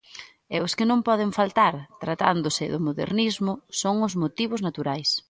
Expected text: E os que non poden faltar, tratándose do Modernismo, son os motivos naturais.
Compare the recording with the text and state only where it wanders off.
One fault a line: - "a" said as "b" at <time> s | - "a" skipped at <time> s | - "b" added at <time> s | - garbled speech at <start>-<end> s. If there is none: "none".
none